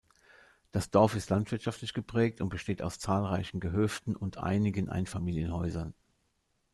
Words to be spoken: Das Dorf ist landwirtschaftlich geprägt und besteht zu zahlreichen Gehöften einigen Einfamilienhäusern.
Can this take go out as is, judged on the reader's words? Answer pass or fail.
fail